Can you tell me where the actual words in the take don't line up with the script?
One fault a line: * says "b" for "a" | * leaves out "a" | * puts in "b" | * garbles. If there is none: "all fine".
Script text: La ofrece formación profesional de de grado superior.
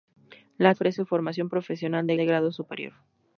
all fine